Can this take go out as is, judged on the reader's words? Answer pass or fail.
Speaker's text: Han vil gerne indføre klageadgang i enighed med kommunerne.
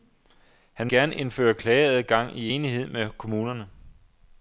fail